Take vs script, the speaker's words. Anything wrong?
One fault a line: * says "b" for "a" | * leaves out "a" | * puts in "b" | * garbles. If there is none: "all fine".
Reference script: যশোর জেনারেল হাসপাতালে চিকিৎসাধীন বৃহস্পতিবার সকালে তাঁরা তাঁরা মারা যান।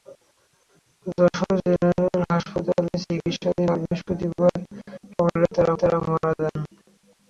all fine